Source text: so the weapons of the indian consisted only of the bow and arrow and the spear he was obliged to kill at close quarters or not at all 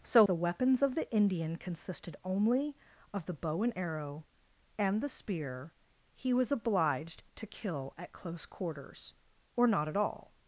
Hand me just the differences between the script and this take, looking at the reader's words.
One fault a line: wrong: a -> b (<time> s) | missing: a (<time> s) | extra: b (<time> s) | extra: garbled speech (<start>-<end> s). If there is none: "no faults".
no faults